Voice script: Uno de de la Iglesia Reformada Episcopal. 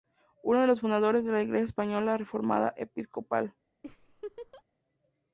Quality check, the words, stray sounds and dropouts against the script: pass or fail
fail